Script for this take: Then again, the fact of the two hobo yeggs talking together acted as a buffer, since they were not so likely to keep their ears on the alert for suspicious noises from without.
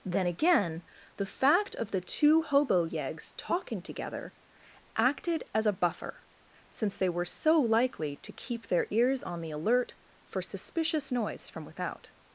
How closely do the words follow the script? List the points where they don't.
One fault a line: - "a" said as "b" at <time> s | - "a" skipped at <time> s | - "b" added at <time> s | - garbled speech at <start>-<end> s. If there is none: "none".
- "not" skipped at 7.2 s
- "noises" said as "noise" at 11.1 s